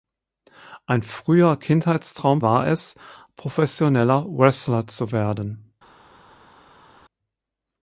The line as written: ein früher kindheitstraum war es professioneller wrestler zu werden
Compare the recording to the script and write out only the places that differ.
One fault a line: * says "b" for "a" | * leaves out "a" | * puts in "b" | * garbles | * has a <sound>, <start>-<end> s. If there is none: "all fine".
all fine